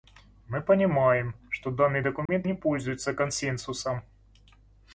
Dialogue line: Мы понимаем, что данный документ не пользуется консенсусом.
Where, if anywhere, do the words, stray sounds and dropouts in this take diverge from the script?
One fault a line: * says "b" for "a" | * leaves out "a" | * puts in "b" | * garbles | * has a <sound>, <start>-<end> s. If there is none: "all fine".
* has a dropout, 2.3-2.3 s